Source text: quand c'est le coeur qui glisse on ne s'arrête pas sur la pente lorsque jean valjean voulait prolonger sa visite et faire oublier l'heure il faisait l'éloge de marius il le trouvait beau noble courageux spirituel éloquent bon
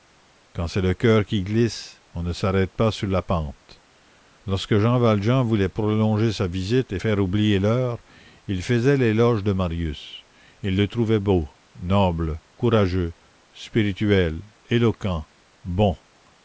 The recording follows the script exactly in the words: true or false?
true